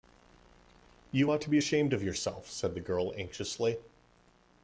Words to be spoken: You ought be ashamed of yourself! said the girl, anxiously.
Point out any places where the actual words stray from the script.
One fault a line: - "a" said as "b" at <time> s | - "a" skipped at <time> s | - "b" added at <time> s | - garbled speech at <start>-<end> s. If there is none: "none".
- "to" added at 1.4 s